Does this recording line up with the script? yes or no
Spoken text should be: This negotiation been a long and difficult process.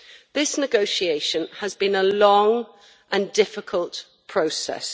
no